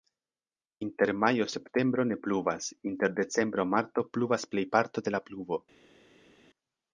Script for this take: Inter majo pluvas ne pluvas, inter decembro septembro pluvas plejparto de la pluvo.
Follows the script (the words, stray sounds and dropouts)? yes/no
no